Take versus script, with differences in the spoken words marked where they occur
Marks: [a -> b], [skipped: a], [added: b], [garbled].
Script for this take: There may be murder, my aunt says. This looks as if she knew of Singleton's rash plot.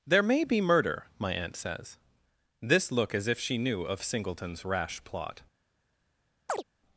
There may be murder, my aunt says. This [looks -> look] as if she knew of Singleton's rash plot.